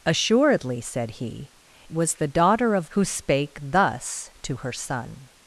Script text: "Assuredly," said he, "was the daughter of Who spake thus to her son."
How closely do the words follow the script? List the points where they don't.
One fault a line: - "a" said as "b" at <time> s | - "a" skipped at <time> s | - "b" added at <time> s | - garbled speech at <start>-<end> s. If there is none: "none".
none